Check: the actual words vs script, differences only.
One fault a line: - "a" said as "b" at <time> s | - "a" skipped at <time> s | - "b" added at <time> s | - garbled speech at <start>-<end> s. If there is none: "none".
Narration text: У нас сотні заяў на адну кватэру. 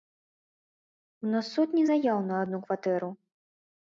none